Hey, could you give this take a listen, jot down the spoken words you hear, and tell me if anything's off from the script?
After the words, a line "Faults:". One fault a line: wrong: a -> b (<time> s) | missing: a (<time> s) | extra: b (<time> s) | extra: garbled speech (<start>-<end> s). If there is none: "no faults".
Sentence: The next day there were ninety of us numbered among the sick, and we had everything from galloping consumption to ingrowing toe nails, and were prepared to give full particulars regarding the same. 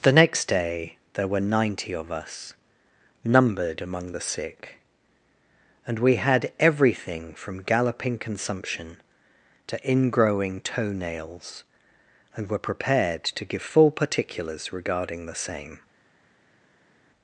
The next day there were ninety of us numbered among the sick, and we had everything from galloping consumption to ingrowing toe nails, and were prepared to give full particulars regarding the same.
Faults:
no faults